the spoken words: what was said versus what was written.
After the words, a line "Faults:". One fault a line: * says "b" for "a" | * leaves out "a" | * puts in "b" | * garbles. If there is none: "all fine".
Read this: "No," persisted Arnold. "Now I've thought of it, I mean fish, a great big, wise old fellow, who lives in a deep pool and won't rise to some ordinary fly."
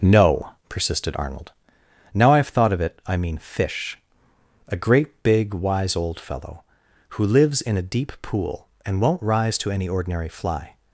"No," persisted Arnold. "Now I've thought of it, I mean fish, a great big, wise old fellow, who lives in a deep pool and won't rise to any ordinary fly."
Faults:
* says "any" for "some"